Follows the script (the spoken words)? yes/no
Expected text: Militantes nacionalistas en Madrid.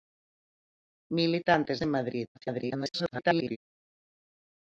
no